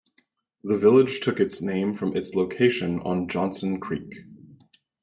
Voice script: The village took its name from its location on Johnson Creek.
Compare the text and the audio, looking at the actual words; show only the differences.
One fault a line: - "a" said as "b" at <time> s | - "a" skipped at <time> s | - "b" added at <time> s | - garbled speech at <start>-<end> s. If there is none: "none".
none